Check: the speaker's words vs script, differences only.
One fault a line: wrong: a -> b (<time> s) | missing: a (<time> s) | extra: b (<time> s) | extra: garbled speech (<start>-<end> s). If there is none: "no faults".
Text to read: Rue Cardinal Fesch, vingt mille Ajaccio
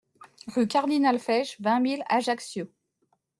no faults